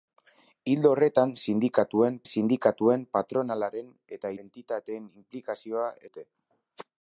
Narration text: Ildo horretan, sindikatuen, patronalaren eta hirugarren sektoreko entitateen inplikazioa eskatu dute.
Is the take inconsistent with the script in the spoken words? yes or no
yes